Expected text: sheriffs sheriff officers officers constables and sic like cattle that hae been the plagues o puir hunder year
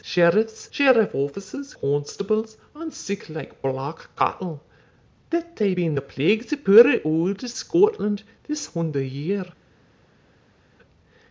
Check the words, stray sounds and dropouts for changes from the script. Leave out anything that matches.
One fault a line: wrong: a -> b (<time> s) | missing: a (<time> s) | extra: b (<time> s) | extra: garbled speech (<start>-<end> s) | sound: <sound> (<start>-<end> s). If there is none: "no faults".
missing: officers (1.8 s)
extra: black (3.6 s)
extra: auld scotland this (7.1 s)